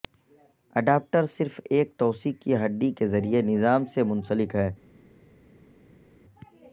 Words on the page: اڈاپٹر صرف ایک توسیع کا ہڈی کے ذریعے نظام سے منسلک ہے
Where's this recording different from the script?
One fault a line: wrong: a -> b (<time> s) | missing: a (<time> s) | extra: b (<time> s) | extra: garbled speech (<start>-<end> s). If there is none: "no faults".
wrong: کا -> کی (2.4 s)